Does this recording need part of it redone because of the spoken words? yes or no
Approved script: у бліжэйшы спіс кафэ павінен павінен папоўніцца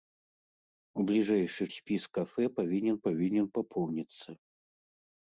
no